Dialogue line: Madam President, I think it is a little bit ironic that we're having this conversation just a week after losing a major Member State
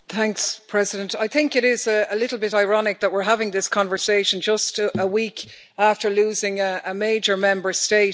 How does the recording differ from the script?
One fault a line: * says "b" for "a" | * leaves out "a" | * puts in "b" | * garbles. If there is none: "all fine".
all fine